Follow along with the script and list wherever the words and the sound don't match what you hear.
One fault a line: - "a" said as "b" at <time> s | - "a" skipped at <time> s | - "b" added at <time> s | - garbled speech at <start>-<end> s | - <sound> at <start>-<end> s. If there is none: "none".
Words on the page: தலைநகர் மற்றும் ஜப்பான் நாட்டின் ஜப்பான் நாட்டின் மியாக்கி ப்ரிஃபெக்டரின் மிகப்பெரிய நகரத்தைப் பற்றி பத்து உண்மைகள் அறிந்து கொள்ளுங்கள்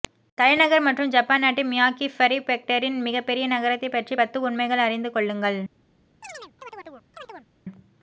- "ஜப்பான் நாட்டின்" skipped at 1.7 s
- chirp at 6.2-7.5 s